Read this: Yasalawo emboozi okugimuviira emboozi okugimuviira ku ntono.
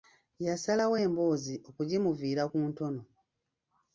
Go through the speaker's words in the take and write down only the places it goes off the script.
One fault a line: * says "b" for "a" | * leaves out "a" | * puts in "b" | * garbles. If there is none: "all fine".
* leaves out "emboozi okugimuviira"